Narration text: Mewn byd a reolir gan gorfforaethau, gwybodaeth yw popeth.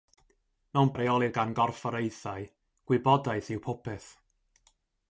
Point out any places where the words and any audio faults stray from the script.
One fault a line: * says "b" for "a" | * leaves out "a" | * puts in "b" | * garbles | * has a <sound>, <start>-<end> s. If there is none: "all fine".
* leaves out "byd"